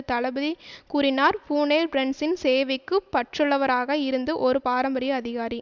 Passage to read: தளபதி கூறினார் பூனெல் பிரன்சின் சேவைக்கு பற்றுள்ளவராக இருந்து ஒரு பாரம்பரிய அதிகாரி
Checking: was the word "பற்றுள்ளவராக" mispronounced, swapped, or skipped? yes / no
no